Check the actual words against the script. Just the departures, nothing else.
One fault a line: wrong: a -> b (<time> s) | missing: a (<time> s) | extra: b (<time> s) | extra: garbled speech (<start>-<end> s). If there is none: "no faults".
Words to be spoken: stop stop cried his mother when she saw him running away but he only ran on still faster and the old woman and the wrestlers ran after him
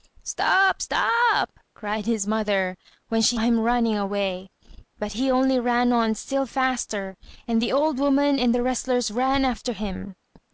missing: saw (3.4 s)